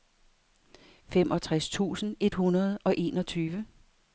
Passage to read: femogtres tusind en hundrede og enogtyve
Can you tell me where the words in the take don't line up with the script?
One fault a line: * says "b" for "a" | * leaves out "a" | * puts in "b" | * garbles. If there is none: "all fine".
* says "et" for "en"